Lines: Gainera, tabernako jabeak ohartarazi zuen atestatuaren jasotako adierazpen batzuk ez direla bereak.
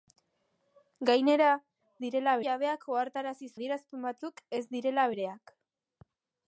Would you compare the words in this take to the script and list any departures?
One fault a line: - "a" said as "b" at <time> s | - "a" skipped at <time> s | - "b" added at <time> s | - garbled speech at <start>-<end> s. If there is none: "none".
- "tabernako" said as "direla" at 2.0 s
- "zuen atestatuaren jasotako" skipped at 3.5 s